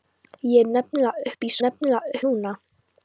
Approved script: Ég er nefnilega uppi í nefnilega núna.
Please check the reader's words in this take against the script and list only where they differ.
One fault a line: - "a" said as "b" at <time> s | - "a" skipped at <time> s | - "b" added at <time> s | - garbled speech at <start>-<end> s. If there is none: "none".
none